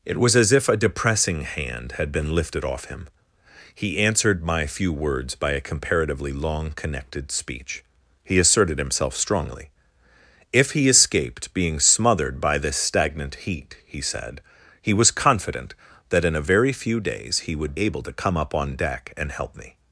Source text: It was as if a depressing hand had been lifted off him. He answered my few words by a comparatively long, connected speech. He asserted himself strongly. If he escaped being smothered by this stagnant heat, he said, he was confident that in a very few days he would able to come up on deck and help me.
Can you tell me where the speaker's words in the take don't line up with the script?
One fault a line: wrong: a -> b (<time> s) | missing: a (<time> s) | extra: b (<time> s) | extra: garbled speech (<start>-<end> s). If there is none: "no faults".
no faults